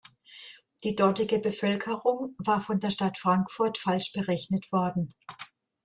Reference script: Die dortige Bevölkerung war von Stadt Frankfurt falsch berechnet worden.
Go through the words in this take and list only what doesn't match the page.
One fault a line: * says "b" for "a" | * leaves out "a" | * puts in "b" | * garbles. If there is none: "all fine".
* puts in "der"